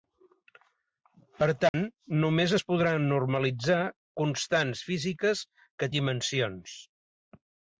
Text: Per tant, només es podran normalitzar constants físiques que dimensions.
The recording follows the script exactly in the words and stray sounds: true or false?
false